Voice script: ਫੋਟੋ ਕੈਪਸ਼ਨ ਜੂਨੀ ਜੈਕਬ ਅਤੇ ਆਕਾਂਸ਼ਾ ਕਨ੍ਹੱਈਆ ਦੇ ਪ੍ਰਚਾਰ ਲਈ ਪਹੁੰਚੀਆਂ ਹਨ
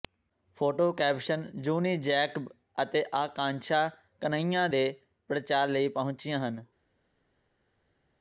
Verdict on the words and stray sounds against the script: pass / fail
pass